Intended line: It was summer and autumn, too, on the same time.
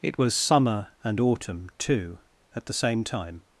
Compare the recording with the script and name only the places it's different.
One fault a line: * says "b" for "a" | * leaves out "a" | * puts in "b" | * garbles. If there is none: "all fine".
* says "at" for "on"